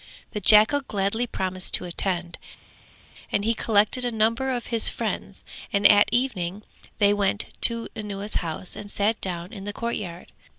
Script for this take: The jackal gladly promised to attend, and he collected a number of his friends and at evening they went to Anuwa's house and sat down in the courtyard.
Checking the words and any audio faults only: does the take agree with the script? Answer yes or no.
yes